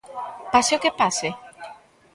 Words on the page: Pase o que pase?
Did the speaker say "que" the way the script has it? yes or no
yes